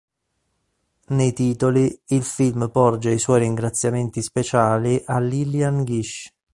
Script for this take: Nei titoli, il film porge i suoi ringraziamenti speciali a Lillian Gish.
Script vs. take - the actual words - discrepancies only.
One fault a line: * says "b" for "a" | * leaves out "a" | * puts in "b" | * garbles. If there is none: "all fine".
all fine